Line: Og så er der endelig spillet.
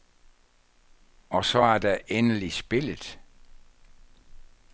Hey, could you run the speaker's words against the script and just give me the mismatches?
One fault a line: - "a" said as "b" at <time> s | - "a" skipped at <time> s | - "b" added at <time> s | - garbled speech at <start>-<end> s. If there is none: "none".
none